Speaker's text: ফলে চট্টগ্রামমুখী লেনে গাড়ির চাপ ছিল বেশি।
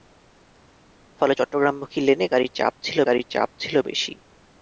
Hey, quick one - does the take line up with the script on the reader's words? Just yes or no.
no